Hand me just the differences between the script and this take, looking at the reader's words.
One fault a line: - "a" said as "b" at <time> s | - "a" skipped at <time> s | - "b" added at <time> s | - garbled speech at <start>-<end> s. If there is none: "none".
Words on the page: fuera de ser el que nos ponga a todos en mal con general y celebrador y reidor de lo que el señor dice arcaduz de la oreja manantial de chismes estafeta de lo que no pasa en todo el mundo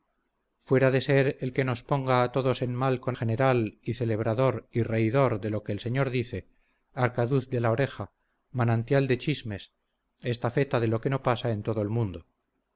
none